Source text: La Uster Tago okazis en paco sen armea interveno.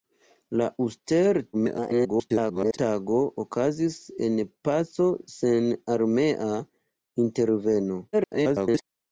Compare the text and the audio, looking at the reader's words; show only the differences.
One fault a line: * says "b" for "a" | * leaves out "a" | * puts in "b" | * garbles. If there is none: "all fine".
* garbles
* garbles